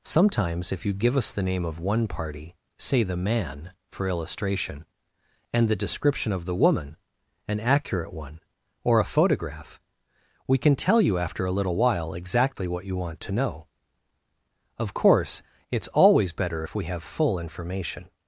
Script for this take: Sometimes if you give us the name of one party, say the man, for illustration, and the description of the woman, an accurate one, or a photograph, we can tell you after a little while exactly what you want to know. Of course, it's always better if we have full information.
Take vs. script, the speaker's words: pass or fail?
pass